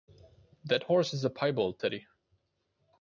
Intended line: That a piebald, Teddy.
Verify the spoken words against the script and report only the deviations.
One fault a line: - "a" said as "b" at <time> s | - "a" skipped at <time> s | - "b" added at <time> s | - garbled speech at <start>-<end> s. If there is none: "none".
- "horse is" added at 0.8 s